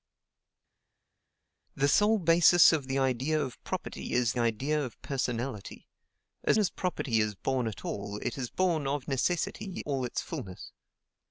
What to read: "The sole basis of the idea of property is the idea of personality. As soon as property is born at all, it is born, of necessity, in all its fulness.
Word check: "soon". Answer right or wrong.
wrong